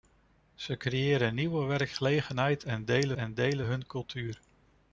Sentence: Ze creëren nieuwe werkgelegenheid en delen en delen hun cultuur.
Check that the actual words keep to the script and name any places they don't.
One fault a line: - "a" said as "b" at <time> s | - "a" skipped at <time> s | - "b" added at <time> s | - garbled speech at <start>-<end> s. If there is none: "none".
none